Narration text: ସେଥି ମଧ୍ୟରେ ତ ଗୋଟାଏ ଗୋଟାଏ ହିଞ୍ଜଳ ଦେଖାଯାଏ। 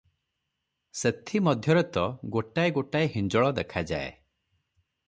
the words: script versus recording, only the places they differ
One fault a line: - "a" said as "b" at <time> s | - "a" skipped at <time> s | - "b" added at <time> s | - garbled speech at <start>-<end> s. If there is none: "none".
none